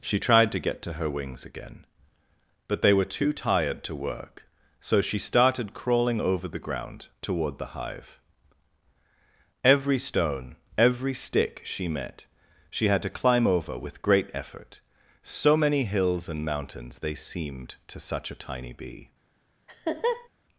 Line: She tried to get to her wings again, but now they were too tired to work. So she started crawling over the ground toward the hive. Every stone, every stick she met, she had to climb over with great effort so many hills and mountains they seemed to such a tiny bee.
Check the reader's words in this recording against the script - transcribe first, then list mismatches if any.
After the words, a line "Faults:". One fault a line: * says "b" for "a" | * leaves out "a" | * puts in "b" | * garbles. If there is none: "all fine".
She tried to get to her wings again, but they were too tired to work. So she started crawling over the ground toward the hive. Every stone, every stick she met, she had to climb over with great effort so many hills and mountains they seemed to such a tiny bee.
Faults:
* leaves out "now"